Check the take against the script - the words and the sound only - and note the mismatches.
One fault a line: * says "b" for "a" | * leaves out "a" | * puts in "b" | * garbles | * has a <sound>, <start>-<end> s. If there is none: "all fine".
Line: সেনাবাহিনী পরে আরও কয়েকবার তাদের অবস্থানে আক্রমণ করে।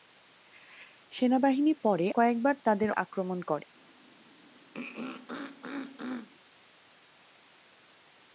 * leaves out "আরও"
* leaves out "অবস্থানে"
* has a throat clearing, 4.7-6.3 s